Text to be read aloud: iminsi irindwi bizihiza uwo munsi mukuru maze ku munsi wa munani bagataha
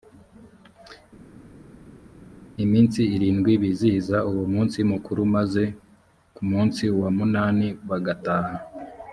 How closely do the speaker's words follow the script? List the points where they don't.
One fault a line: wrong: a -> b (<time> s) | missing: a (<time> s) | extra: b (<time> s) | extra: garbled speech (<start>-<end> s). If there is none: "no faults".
no faults